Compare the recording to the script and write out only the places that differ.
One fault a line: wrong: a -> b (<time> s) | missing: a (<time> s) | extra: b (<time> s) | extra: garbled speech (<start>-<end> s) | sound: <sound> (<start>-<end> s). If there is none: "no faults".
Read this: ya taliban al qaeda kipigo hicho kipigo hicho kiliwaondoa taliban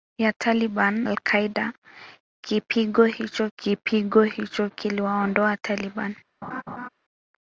sound: laugh (6.4-6.9 s)